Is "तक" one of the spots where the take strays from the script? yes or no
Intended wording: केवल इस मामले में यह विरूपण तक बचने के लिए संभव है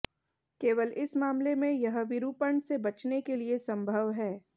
yes